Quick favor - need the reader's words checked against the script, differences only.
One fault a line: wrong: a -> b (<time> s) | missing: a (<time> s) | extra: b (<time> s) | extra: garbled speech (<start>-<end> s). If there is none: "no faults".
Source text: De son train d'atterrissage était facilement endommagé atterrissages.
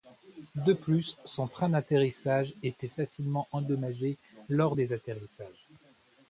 extra: plus (0.7 s)
extra: lors des (4.5 s)